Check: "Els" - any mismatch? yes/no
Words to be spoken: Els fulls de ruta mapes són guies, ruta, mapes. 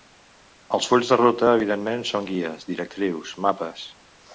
no